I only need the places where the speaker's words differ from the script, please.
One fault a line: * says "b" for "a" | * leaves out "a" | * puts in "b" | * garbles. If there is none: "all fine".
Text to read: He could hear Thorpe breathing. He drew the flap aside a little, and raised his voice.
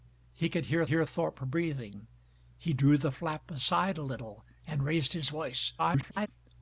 * puts in "hear"
* garbles